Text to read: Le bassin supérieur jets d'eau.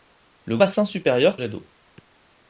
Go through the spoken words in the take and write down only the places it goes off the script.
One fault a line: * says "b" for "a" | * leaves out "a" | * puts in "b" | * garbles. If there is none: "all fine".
all fine